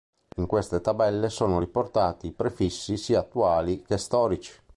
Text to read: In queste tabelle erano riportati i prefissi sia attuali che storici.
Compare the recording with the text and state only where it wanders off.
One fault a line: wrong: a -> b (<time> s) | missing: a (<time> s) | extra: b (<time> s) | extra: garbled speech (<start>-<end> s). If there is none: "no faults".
wrong: erano -> sono (1.3 s)